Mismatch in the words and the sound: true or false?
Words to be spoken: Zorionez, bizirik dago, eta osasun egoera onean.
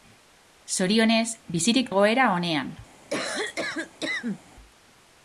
true